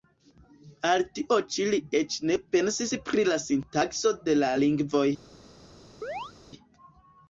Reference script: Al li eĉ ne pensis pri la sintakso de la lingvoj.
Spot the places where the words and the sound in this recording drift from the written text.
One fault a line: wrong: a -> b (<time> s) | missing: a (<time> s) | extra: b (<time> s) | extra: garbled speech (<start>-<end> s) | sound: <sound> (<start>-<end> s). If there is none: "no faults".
extra: tio ĉi (1.2 s)
sound: chirp (6.0-6.3 s)